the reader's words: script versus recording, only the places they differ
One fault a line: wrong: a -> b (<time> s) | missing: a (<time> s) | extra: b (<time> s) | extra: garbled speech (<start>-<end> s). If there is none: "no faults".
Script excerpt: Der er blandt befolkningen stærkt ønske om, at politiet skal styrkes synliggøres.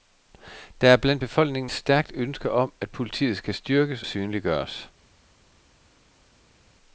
no faults